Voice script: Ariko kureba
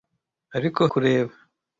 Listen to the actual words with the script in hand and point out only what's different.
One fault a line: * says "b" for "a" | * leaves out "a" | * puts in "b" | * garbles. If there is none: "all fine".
all fine